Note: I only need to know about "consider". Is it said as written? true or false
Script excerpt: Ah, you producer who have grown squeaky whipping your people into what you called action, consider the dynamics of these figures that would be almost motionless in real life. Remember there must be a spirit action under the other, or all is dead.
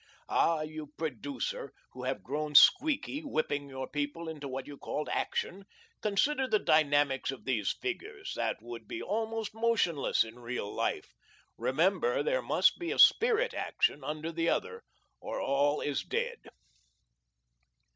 true